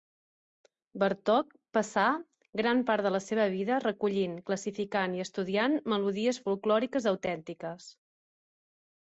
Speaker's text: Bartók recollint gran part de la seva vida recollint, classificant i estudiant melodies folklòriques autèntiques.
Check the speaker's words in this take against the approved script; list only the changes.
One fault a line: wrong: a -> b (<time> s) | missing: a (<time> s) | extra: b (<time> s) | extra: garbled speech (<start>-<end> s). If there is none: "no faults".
wrong: recollint -> passà (1.8 s)